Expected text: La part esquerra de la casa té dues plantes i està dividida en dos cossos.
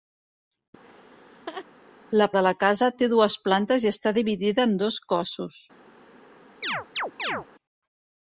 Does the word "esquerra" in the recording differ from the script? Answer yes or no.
yes